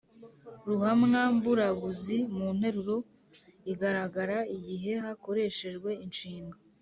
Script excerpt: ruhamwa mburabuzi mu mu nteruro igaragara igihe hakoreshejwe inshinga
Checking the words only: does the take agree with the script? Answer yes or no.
no